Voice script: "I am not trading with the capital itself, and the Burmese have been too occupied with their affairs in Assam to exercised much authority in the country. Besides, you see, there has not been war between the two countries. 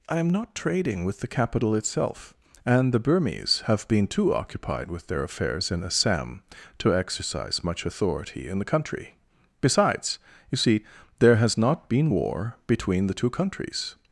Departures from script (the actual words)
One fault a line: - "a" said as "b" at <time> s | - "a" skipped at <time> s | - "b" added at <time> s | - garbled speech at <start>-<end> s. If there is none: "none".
- "exercised" said as "exercise" at 6.9 s